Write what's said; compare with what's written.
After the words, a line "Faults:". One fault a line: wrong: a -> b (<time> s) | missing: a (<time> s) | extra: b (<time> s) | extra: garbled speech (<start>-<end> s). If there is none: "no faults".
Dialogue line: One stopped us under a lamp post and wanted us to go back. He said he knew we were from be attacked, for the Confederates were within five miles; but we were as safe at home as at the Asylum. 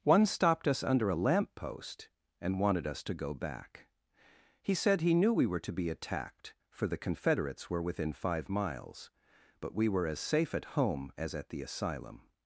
One stopped us under a lamp post and wanted us to go back. He said he knew we were to be attacked, for the Confederates were within five miles; but we were as safe at home as at the Asylum.
Faults:
wrong: from -> to (5.6 s)